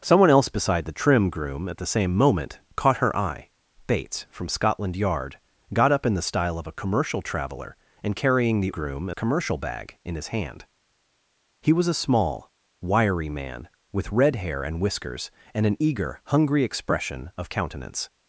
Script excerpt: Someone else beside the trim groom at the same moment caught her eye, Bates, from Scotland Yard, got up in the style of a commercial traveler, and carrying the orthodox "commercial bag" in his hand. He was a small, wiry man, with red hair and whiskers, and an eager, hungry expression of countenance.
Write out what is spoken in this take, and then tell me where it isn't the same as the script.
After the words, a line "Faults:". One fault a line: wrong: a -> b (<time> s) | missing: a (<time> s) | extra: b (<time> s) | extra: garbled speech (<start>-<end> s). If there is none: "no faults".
Someone else beside the trim groom at the same moment caught her eye, Bates, from Scotland Yard, got up in the style of a commercial traveler, and carrying the groom "commercial bag" in his hand. He was a small, wiry man, with red hair and whiskers, and an eager, hungry expression of countenance.
Faults:
wrong: orthodox -> groom (8.7 s)